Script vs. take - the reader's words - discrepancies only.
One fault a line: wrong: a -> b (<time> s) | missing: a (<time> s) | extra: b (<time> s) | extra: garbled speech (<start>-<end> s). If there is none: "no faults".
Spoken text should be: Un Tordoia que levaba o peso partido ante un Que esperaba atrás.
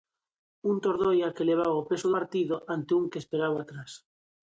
no faults